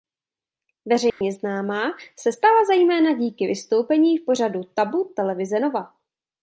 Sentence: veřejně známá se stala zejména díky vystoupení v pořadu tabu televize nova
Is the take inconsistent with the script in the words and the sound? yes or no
yes